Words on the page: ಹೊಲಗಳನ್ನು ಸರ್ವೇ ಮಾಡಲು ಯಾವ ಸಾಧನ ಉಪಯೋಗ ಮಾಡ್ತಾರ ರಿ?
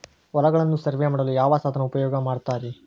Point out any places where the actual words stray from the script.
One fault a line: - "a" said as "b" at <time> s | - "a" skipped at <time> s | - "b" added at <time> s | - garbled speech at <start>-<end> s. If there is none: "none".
none